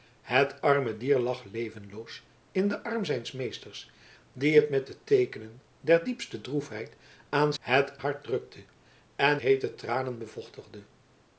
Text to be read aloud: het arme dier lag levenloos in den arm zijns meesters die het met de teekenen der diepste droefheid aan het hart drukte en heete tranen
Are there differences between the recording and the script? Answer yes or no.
no